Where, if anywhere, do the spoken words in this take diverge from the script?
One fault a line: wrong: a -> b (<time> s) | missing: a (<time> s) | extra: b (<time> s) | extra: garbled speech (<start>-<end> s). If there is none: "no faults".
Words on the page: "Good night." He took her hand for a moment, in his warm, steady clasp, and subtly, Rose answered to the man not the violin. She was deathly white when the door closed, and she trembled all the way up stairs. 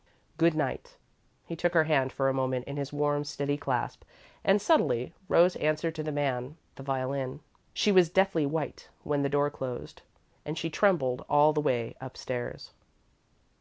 missing: not (6.6 s)